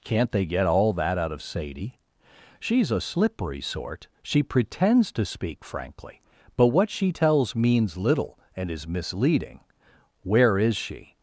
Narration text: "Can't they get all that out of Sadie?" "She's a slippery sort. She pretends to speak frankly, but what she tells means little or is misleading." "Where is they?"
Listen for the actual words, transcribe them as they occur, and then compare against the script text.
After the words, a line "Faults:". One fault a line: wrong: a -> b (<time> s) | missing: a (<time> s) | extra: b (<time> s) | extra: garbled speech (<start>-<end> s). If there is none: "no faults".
"Can't they get all that out of Sadie?" "She's a slippery sort. She pretends to speak frankly, but what she tells means little and is misleading." "Where is she?"
Faults:
wrong: or -> and (8.5 s)
wrong: they -> she (10.8 s)